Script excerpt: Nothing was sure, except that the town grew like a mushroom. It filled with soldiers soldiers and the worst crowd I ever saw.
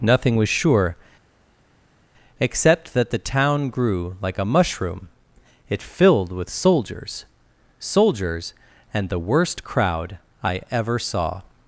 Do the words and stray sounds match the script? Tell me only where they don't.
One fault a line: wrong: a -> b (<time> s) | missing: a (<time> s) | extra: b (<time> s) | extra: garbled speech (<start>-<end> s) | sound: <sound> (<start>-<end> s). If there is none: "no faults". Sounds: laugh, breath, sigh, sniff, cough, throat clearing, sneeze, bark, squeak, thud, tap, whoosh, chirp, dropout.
no faults